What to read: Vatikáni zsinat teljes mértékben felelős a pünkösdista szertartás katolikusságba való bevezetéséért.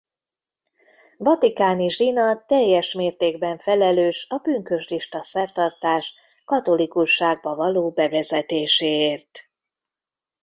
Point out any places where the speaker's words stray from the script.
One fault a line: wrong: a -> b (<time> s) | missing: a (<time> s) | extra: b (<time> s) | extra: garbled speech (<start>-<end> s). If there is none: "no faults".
no faults